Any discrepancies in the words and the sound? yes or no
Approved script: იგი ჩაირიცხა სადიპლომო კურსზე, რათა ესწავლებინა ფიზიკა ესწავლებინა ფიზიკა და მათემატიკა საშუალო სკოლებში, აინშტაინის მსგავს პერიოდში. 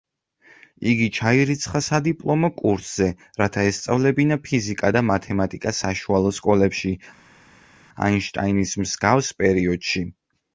yes